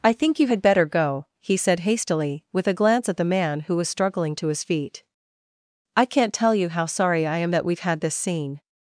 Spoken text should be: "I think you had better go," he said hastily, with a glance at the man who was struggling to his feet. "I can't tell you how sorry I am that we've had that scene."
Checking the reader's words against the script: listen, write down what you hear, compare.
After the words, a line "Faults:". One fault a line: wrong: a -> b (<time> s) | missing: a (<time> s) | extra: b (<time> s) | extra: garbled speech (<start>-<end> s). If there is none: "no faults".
"I think you had better go," he said hastily, with a glance at the man who was struggling to his feet. "I can't tell you how sorry I am that we've had this scene."
Faults:
wrong: that -> this (8.0 s)